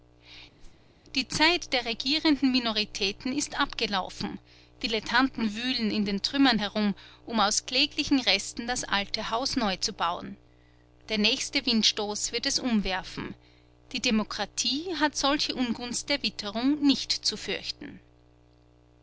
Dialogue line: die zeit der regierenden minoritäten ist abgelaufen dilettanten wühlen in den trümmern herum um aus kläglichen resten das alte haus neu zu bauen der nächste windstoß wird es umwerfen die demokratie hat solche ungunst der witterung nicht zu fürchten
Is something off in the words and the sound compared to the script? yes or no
yes